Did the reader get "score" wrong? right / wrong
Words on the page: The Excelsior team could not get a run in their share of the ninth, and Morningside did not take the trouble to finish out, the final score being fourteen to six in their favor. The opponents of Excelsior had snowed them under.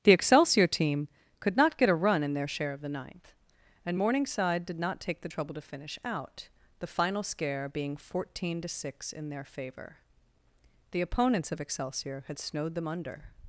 wrong